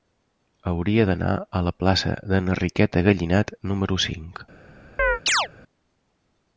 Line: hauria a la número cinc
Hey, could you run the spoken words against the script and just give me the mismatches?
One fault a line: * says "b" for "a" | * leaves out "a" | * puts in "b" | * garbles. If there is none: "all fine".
* puts in "d'anar"
* puts in "plaça d'enriqueta gallinat"